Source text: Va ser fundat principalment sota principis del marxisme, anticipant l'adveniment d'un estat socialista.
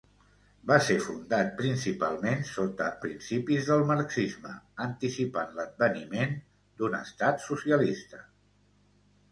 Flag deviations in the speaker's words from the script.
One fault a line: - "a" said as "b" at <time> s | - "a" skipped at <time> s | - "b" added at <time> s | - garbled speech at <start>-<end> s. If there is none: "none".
none